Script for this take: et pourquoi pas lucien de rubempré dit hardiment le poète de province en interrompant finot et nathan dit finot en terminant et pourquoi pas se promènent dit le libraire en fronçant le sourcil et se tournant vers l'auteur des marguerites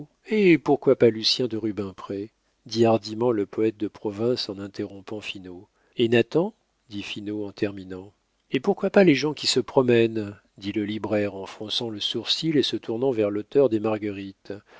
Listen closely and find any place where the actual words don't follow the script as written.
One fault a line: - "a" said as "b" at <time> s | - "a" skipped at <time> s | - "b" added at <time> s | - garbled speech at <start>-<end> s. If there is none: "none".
- "les gens qui" added at 9.0 s